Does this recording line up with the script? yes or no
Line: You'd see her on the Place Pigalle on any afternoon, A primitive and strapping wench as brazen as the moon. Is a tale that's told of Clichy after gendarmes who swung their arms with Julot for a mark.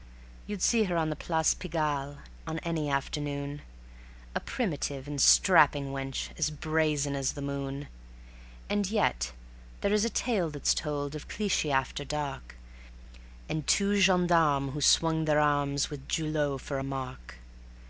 no